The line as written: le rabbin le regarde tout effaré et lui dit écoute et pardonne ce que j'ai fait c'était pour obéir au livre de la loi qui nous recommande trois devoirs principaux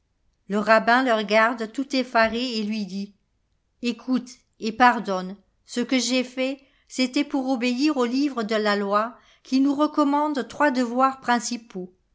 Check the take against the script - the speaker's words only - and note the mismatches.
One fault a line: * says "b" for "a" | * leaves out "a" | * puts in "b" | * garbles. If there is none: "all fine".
all fine